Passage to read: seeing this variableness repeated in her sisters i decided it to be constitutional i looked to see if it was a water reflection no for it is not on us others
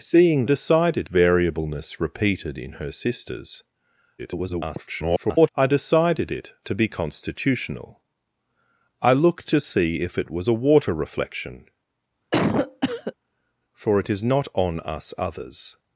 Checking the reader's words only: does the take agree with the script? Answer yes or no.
no